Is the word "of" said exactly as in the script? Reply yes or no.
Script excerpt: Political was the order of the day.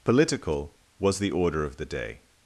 yes